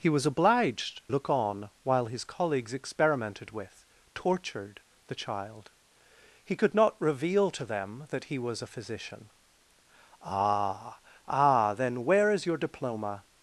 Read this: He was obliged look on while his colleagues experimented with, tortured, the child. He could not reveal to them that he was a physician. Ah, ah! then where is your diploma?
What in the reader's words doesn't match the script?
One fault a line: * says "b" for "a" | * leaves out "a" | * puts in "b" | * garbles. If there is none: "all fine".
all fine